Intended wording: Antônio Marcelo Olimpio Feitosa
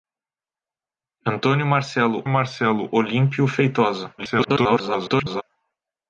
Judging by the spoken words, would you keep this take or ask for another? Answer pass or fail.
fail